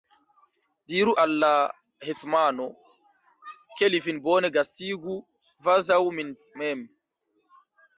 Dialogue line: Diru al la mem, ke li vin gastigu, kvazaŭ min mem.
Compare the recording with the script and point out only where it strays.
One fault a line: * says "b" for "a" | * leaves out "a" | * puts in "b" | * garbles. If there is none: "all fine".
* says "hetmano" for "mem"
* puts in "bone"